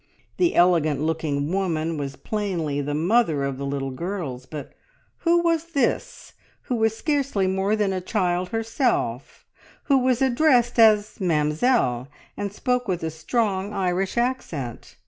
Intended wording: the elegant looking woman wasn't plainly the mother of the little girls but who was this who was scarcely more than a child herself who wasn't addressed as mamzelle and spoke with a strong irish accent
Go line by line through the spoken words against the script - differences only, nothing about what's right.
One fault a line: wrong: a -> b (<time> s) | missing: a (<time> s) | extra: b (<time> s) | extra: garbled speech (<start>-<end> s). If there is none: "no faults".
wrong: wasn't -> was (1.9 s)
wrong: wasn't -> was (10.0 s)